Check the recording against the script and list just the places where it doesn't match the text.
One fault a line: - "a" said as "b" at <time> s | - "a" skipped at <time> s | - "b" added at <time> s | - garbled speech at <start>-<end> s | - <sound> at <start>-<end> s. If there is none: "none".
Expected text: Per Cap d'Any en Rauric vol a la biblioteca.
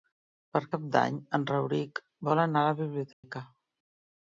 - "anar" added at 2.5 s
- dropout at 3.1-3.2 s